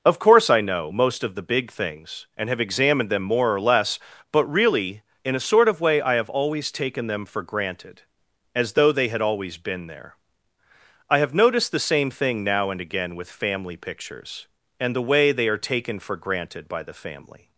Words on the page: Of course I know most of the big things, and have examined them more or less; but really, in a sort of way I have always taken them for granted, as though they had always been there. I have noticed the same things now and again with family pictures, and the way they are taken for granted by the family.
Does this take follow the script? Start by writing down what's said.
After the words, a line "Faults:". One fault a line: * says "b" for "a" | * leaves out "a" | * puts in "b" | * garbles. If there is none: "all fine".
Of course I know most of the big things, and have examined them more or less; but really, in a sort of way I have always taken them for granted, as though they had always been there. I have noticed the same thing now and again with family pictures, and the way they are taken for granted by the family.
Faults:
* says "thing" for "things"